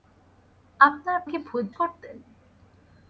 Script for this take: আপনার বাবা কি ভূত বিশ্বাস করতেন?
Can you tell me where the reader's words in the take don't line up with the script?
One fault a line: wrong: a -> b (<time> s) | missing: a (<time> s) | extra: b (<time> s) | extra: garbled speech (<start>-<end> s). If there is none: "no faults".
missing: বাবা (1.2 s)
missing: বিশ্বাস (1.7 s)